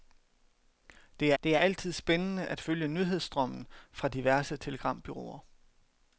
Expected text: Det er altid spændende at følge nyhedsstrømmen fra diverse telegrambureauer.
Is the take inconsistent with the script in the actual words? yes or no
yes